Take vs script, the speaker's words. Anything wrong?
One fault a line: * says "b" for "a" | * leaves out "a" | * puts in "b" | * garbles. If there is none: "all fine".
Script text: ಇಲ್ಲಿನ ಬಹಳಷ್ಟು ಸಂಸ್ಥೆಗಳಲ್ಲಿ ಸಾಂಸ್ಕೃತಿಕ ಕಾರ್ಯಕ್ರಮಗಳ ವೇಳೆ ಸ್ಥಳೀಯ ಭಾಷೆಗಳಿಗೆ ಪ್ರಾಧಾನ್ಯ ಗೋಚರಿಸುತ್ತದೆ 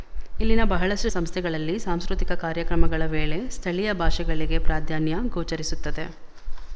all fine